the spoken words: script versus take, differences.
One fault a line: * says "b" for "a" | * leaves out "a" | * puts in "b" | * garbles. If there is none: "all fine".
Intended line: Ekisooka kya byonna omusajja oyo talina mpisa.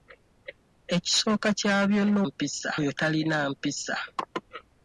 * says "mpisa" for "omusajja"